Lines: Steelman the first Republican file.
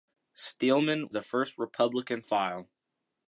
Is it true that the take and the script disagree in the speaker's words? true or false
false